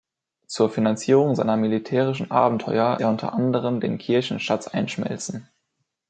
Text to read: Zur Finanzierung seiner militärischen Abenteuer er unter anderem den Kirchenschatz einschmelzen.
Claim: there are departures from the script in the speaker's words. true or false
false